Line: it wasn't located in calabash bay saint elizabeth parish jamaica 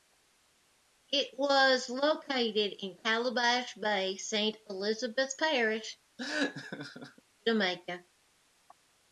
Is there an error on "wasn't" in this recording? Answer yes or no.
yes